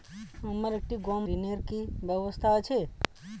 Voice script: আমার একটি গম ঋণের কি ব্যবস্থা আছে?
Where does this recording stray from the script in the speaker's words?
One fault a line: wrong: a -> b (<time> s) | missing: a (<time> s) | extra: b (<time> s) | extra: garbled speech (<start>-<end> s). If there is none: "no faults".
no faults